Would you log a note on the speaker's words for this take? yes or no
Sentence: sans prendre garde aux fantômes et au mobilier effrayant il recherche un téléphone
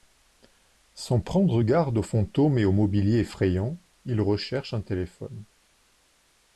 no